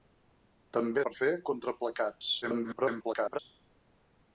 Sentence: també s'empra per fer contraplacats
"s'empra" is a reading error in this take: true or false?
true